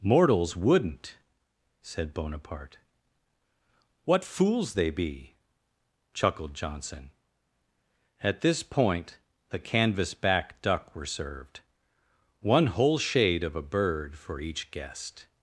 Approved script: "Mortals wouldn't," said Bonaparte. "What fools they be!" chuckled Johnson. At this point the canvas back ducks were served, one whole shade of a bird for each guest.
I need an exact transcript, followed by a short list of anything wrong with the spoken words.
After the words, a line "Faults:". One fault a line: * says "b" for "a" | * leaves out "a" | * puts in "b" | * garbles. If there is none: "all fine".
"Mortals wouldn't," said Bonaparte. "What fools they be!" chuckled Johnson. At this point the canvas back duck were served, one whole shade of a bird for each guest.
Faults:
* says "duck" for "ducks"